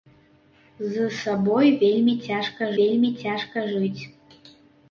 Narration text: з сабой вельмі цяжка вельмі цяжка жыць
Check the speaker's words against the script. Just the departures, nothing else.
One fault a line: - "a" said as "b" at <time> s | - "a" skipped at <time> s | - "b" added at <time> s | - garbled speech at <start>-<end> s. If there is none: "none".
none